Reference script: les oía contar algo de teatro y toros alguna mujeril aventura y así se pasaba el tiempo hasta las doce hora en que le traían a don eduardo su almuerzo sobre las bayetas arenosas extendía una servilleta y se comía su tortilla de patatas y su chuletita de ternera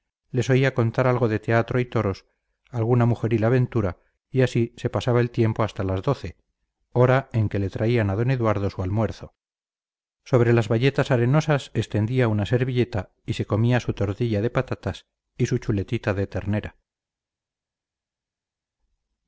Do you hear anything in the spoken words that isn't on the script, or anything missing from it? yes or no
no